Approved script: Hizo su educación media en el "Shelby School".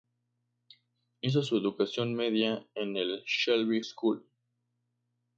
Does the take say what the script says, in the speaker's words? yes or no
yes